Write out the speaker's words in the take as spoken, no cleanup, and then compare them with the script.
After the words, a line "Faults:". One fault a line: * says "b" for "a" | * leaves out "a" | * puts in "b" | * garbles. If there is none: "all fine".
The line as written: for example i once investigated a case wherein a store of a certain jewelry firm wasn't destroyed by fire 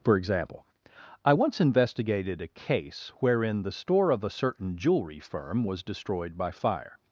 for example i once investigated a case wherein the store of a certain jewelry firm was destroyed by fire
Faults:
* says "the" for "a"
* says "was" for "wasn't"